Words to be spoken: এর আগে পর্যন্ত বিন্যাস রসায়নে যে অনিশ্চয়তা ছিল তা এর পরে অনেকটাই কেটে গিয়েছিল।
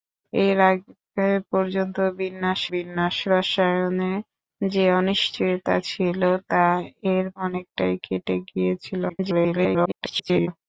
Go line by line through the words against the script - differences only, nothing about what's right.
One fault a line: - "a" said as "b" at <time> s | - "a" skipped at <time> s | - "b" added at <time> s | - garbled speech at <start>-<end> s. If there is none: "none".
- "বিন্যাস" added at 2.7 s
- "পরে" skipped at 7.3 s
- garbled speech at 9.1-10.5 s